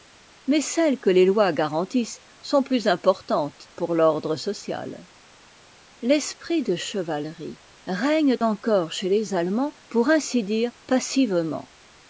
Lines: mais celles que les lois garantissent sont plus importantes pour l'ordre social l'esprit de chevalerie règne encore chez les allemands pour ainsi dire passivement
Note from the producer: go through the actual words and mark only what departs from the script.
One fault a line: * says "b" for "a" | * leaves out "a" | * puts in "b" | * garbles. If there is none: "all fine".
all fine